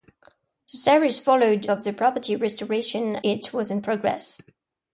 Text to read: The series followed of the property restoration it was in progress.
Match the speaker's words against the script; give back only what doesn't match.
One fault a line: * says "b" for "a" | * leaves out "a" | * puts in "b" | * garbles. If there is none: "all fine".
all fine